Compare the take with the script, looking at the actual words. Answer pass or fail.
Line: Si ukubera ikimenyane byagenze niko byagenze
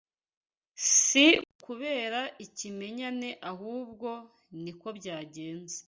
fail